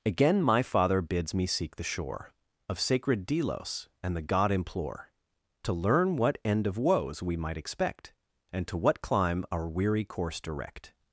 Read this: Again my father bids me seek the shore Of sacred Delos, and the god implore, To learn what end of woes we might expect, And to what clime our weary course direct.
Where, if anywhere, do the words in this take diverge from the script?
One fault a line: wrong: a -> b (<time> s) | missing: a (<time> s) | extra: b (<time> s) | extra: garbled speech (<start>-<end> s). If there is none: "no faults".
no faults